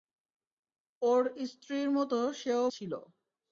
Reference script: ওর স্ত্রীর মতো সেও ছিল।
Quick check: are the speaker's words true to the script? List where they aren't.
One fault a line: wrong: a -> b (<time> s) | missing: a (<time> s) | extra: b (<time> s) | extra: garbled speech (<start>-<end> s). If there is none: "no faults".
no faults